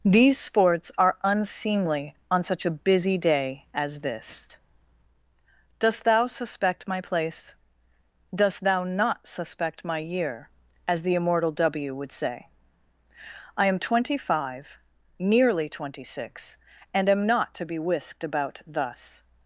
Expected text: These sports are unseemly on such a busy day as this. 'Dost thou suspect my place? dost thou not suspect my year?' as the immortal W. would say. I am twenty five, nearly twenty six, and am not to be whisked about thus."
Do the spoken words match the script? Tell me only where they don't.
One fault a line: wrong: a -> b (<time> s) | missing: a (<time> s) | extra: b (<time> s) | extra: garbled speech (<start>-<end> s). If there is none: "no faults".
no faults